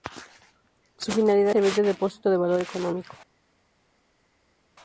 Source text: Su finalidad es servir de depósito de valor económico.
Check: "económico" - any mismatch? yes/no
no